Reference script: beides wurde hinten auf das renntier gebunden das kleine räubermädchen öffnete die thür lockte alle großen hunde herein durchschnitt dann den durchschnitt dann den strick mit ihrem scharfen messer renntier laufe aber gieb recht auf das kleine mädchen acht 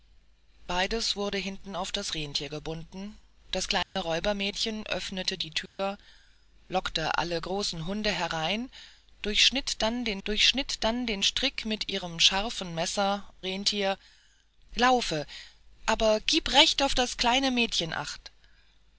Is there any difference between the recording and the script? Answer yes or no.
no